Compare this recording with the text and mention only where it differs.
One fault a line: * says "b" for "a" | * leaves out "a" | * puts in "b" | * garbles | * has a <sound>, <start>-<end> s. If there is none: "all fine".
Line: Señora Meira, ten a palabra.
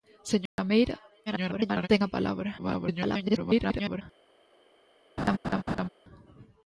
* has a dropout, 0.5-0.6 s
* garbles
* garbles
* has a laugh, 5.2-5.9 s